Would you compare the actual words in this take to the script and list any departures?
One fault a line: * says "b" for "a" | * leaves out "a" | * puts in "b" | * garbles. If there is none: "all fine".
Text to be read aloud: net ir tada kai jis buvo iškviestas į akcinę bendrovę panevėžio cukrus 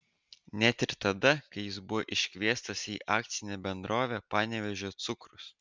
all fine